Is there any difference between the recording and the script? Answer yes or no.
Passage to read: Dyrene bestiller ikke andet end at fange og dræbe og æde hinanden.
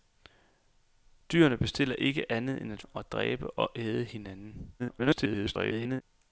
yes